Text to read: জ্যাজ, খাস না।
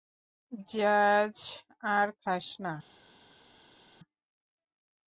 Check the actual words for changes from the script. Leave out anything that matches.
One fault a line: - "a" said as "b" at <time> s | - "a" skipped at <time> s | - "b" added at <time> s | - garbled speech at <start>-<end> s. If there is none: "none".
- "আর" added at 1.9 s